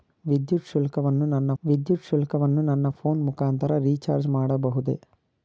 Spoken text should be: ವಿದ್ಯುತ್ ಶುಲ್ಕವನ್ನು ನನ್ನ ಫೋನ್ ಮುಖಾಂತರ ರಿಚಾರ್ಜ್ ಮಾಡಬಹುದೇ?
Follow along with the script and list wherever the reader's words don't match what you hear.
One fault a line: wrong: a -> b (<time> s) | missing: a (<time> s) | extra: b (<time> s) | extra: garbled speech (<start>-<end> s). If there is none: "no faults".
extra: ವಿದ್ಯುತ್ ಶುಲ್ಕವನ್ನು ನನ್ನ (1.6 s)